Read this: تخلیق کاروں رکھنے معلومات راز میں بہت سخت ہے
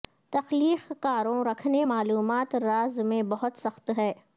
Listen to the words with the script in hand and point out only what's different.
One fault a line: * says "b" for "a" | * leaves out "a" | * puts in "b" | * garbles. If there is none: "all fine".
all fine